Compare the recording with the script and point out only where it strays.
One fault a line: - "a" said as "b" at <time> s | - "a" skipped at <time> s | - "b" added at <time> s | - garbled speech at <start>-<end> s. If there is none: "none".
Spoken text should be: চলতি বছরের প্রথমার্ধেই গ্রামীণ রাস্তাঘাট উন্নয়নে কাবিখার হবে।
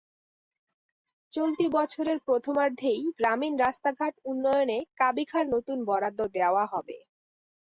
- "নতুন বরাদ্দ দেওয়া" added at 5.5 s